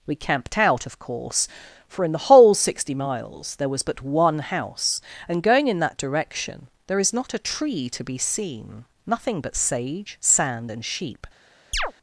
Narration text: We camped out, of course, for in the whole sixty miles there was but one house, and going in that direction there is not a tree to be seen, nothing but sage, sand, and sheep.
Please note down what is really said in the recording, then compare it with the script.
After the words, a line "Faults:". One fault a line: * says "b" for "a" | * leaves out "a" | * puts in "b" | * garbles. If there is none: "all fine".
We camped out, of course, for in the whole sixty miles there was but one house, and going in that direction there is not a tree to be seen, nothing but sage, sand, and sheep.
Faults:
all fine